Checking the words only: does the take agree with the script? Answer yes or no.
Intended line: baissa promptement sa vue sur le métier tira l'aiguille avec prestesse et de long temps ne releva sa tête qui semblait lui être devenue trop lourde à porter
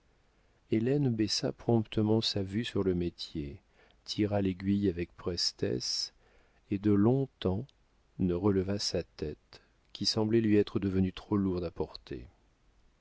yes